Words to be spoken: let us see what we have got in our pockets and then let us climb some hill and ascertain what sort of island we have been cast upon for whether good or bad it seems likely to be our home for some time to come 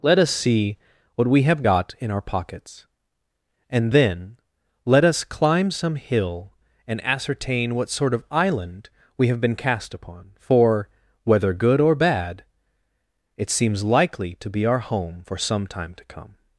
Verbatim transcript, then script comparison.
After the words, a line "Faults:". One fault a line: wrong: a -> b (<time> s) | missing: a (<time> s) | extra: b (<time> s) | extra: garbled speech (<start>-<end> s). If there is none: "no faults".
let us see what we have got in our pockets and then let us climb some hill and ascertain what sort of island we have been cast upon for whether good or bad it seems likely to be our home for some time to come
Faults:
no faults